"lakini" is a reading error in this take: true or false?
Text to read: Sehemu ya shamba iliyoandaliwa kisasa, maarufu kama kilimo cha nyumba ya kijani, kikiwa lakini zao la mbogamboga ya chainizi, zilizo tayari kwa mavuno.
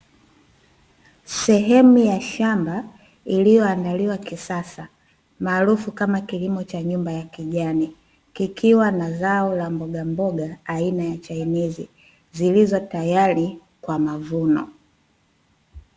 true